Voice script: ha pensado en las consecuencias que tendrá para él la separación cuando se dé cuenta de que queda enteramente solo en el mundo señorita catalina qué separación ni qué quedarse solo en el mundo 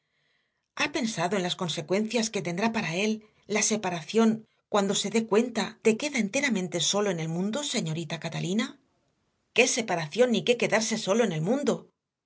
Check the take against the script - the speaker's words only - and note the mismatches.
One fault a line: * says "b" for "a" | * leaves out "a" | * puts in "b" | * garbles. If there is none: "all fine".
* leaves out "que"